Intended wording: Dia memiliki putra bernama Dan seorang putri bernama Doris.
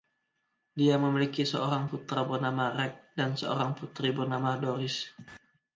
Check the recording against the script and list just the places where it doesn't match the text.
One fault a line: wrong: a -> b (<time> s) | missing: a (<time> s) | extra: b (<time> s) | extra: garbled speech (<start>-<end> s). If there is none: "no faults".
extra: seorang (1.4 s)
extra: Rex (2.7 s)